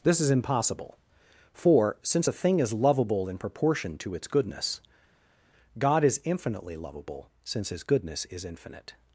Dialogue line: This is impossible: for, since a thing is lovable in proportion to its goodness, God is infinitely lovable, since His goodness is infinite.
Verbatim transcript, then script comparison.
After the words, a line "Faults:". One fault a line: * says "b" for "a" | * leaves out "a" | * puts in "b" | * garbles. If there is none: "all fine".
This is impossible: for, since a thing is lovable in proportion to its goodness, God is infinitely lovable, since His goodness is infinite.
Faults:
all fine